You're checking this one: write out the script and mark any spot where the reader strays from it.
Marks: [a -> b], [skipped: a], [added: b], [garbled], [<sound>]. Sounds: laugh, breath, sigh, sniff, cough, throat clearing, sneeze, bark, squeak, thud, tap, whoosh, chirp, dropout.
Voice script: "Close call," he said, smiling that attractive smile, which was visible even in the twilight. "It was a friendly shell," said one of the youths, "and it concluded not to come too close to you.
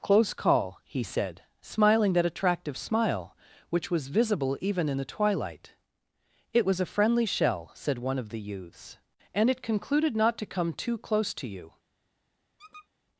"Close call," he said, smiling that attractive smile, which was visible even in the twilight. "It was a friendly shell," said one of the youths, "and it concluded not to come too close to you. [squeak]